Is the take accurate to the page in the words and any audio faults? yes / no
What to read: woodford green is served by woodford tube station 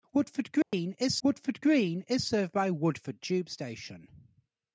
no